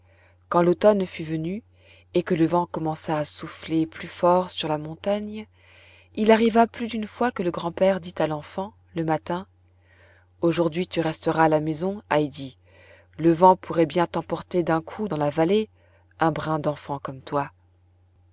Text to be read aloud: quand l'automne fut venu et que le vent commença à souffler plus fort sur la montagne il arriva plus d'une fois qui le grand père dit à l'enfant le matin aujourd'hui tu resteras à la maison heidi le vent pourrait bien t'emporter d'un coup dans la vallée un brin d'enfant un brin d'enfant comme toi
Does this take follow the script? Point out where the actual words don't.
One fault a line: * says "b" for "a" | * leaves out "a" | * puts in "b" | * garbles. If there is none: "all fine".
* says "que" for "qui"
* leaves out "un brin d'enfant"